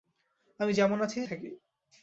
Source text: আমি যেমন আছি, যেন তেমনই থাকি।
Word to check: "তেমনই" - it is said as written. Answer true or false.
false